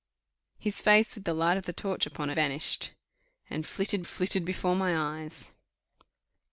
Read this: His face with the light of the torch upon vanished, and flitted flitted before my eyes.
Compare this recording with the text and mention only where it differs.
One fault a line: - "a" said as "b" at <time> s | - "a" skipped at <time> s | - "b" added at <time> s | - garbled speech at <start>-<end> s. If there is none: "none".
none